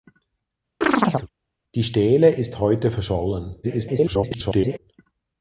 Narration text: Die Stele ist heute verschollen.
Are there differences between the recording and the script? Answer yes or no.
yes